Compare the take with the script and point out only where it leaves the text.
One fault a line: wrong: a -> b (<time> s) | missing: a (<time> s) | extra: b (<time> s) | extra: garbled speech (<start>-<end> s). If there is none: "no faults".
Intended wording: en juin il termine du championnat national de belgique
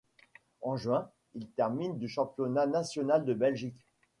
no faults